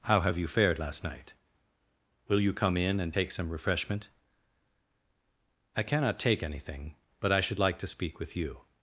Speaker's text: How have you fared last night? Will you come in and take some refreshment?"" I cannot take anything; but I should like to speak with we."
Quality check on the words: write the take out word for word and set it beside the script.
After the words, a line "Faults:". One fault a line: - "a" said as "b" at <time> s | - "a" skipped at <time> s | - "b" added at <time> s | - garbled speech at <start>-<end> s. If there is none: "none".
How have you fared last night? Will you come in and take some refreshment?"" I cannot take anything; but I should like to speak with you."
Faults:
- "we" said as "you" at 8.4 s